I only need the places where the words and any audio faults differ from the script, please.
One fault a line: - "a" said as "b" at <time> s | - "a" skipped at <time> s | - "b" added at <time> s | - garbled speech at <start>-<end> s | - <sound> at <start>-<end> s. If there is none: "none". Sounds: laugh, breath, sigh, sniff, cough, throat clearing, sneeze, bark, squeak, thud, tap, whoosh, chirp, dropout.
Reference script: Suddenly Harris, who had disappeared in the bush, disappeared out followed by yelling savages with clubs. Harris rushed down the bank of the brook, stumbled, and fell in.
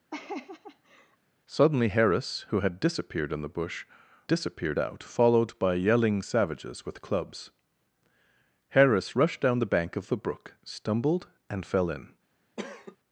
- laugh at 0.1-1.2 s
- cough at 12.6-13.0 s